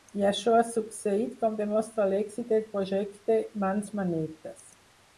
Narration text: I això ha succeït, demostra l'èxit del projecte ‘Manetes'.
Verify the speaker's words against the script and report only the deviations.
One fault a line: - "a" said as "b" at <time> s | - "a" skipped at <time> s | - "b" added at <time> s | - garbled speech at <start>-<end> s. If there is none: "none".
- "com" added at 1.4 s
- "Mans" added at 3.7 s